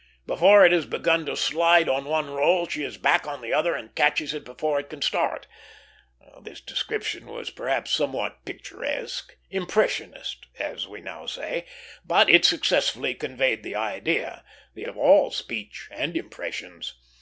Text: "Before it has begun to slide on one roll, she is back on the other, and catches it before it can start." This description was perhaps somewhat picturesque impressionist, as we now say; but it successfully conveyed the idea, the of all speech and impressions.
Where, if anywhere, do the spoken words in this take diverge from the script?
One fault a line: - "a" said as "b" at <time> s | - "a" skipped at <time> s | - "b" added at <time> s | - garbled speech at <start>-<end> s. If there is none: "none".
none